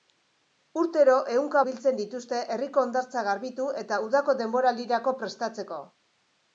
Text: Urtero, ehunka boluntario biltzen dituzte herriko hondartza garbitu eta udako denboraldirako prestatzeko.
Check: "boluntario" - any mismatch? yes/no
yes